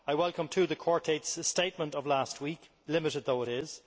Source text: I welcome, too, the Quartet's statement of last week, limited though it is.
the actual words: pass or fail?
pass